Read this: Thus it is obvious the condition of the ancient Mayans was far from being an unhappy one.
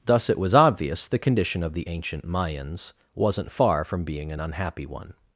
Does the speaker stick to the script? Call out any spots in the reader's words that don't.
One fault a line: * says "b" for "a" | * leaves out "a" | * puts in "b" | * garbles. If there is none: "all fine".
* says "was" for "is"
* says "wasn't" for "was"